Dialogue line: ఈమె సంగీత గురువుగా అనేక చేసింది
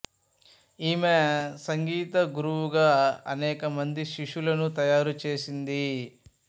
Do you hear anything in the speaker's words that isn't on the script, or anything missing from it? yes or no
yes